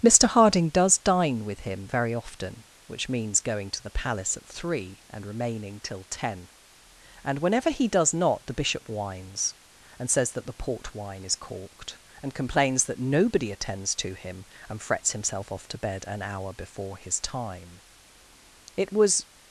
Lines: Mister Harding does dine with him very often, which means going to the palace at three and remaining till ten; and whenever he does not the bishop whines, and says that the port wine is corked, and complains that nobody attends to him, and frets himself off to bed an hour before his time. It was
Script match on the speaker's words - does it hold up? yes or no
yes